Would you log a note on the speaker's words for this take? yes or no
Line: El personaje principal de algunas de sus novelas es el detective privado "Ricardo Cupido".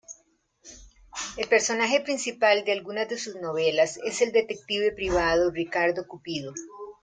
no